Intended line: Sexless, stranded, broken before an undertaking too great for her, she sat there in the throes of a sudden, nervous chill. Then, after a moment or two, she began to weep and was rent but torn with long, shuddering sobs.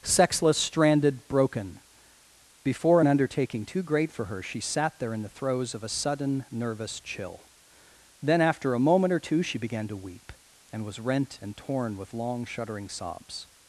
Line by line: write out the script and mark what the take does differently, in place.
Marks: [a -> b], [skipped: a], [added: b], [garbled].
Sexless, stranded, broken before an undertaking too great for her, she sat there in the throes of a sudden, nervous chill. Then, after a moment or two, she began to weep and was rent [but -> and] torn with long, shuddering sobs.